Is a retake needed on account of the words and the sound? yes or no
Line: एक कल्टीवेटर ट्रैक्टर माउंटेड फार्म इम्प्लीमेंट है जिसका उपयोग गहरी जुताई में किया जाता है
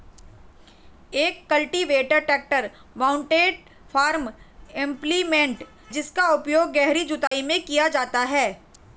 yes